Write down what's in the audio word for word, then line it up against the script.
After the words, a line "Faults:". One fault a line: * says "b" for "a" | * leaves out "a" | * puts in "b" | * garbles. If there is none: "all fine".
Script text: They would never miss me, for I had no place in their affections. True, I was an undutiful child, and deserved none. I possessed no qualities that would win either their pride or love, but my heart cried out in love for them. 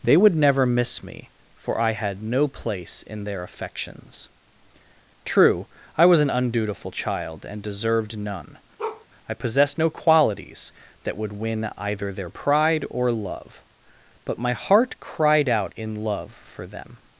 They would never miss me, for I had no place in their affections. True, I was an undutiful child, and deserved none. I possessed no qualities that would win either their pride or love, but my heart cried out in love for them.
Faults:
all fine